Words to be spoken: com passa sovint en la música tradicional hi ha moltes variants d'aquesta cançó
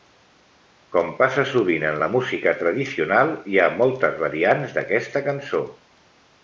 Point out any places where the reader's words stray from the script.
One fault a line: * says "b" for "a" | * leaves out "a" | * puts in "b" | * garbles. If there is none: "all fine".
all fine